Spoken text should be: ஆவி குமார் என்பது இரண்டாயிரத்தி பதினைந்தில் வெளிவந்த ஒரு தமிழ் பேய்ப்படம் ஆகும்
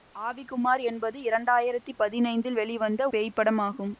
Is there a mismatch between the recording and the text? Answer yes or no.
yes